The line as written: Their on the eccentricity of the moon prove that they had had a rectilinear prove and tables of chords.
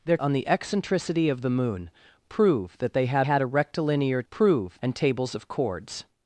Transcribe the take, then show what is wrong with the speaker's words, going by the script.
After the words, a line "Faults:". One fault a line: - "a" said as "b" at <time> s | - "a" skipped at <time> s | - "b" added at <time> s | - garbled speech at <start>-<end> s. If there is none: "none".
Their on the eccentricity of the moon prove that they had had a rectilinear prove and tables of chords.
Faults:
none